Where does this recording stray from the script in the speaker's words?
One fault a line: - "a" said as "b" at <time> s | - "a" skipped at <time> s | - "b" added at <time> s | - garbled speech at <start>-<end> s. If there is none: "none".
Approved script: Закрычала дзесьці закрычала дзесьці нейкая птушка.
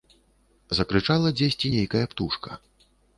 - "закрычала дзесьці" skipped at 1.7 s